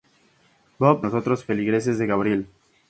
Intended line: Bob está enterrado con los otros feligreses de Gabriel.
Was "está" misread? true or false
true